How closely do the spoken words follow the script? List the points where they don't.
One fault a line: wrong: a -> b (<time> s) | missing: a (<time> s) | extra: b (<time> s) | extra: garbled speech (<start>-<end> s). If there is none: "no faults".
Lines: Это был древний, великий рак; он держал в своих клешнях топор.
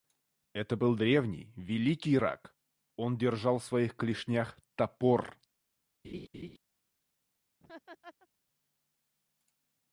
no faults